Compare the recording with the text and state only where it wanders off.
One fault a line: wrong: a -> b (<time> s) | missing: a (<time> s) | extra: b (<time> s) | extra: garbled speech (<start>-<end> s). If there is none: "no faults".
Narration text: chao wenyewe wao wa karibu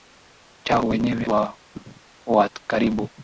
no faults